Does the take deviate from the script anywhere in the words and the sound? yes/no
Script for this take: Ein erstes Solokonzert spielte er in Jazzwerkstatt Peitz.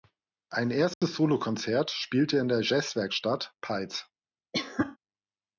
yes